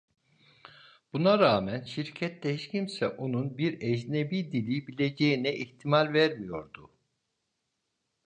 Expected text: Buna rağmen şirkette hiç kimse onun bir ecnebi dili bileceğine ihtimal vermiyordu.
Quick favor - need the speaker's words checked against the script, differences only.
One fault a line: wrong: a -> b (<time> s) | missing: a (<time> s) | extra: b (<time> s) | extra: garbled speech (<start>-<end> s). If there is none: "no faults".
no faults